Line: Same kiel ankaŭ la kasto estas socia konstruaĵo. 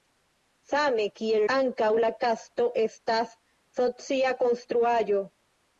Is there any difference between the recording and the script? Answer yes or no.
no